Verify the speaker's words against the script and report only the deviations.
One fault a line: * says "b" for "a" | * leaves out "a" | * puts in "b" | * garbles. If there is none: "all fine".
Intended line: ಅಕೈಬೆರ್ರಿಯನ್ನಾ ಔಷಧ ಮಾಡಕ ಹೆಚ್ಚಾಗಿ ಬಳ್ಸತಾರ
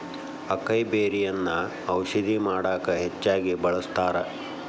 all fine